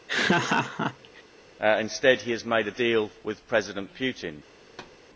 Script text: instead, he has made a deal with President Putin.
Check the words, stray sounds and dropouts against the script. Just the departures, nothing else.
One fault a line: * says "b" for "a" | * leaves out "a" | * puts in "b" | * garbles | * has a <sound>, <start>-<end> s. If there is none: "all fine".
* has a laugh, 0.1-1.2 s
* has a thud, 4.6-5.0 s